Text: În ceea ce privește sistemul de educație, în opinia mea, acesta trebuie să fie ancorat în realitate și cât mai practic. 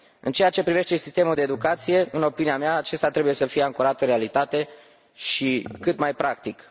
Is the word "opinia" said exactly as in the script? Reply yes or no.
yes